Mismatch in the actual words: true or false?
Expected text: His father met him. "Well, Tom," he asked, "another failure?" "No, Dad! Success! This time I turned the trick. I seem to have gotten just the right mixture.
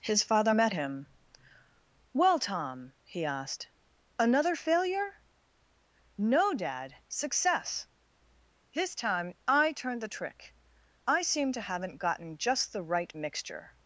true